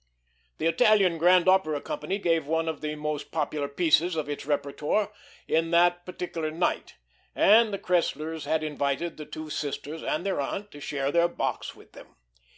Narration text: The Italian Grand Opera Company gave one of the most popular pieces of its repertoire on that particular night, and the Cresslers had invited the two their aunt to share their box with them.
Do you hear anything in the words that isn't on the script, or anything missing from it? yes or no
yes